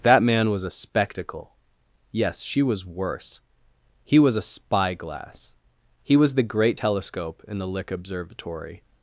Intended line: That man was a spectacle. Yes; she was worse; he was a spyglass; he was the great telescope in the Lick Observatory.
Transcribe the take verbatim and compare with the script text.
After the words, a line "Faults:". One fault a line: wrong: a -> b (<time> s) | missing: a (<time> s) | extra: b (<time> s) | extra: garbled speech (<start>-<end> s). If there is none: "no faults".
That man was a spectacle. Yes; she was worse; he was a spyglass; he was the great telescope in the Lick Observatory.
Faults:
no faults